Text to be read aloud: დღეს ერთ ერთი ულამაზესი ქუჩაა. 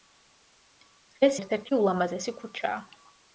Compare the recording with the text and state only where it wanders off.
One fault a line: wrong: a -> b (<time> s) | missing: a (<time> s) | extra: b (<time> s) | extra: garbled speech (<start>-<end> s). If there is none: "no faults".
no faults